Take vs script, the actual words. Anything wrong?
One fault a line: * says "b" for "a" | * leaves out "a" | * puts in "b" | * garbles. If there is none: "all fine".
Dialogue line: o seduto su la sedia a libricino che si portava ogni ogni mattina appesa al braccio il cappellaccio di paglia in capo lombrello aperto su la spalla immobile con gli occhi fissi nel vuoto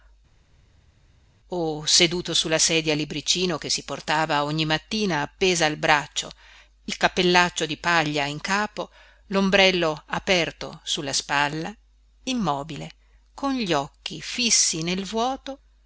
* leaves out "ogni"